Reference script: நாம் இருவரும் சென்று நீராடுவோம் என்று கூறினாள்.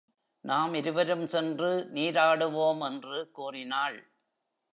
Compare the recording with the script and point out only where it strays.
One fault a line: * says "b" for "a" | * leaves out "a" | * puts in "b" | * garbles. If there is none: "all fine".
all fine